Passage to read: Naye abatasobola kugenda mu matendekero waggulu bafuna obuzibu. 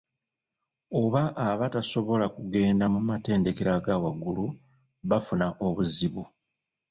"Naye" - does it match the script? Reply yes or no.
no